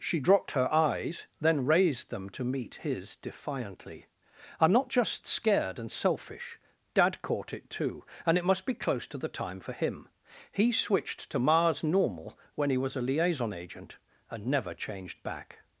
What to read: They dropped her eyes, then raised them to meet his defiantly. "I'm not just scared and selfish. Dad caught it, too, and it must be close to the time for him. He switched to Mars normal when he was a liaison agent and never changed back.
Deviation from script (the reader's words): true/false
true